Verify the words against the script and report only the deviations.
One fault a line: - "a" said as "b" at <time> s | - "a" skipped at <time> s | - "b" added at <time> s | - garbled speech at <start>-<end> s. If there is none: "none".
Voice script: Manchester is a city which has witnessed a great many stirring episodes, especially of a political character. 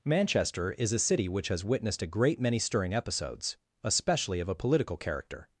none